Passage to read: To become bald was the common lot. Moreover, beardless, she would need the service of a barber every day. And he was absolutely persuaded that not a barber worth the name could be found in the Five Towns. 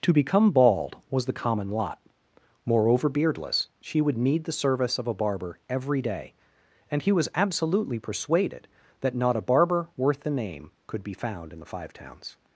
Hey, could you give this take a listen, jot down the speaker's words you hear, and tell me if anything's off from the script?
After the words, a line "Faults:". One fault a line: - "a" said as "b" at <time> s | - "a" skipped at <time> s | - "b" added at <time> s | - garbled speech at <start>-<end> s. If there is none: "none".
To become bald was the common lot. Moreover, beardless, she would need the service of a barber every day. And he was absolutely persuaded that not a barber worth the name could be found in the Five Towns.
Faults:
none